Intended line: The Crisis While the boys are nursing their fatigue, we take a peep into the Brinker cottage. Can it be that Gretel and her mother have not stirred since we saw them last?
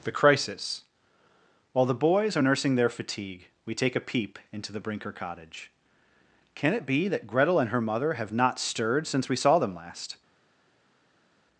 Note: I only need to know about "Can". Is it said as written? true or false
true